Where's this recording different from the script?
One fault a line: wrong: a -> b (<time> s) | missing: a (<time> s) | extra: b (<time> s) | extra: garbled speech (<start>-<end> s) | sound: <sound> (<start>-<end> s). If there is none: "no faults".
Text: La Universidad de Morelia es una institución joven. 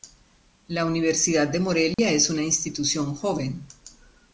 sound: dropout (1.9-2.0 s)